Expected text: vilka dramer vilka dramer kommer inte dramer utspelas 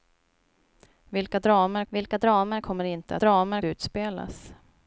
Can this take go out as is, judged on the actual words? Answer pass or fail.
pass